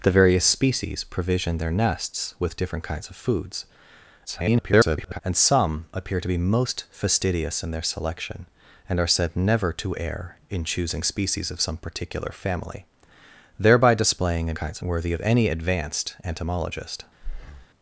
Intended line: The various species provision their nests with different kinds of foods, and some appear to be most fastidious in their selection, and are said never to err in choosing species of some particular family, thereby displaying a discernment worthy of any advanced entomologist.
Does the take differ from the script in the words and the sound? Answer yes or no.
yes